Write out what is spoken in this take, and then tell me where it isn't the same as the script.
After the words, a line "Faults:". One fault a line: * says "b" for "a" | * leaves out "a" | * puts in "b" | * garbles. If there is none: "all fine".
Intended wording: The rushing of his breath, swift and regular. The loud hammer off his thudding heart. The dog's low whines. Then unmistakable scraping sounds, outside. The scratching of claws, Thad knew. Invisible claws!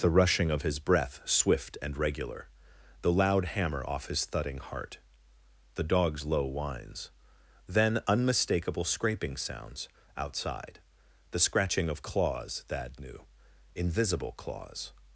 The rushing of his breath, swift and regular. The loud hammer off his thudding heart. The dog's low whines. Then unmistakable scraping sounds, outside. The scratching of claws, Thad knew. Invisible claws!
Faults:
all fine